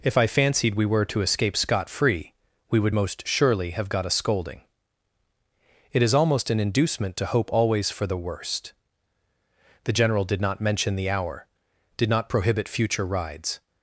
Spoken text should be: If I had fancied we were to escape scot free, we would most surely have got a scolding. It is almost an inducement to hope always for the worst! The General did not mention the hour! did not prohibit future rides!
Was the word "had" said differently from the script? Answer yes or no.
yes